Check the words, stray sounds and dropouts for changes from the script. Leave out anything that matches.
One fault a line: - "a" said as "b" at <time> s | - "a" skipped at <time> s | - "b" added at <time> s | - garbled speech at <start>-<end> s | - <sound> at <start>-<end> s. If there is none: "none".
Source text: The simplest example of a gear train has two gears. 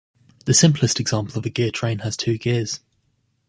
none